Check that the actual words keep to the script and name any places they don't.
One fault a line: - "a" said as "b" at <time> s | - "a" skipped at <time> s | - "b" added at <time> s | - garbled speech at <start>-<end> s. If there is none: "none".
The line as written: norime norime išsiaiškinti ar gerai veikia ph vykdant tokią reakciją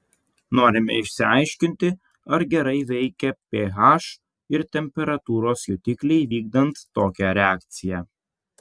- "norime" skipped at 0.9 s
- "ir temperatūros jutikliai" added at 4.6 s